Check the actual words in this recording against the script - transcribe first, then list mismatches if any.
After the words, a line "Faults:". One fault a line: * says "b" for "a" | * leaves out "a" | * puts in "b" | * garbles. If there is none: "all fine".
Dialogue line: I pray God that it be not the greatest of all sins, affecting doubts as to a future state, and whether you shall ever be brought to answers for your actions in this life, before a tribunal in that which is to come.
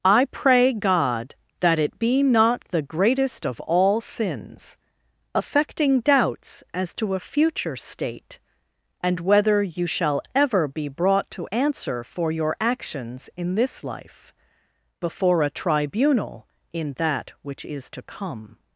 I pray God that it be not the greatest of all sins, affecting doubts as to a future state, and whether you shall ever be brought to answer for your actions in this life, before a tribunal in that which is to come.
Faults:
* says "answer" for "answers"